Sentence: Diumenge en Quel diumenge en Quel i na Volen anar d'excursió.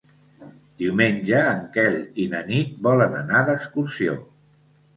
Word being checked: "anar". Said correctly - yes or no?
yes